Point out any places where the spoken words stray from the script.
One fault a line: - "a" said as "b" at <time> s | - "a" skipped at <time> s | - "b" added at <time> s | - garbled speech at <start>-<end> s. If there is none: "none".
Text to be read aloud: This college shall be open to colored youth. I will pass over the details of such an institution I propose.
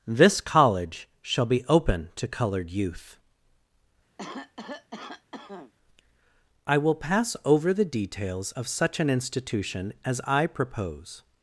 - "as" added at 10.1 s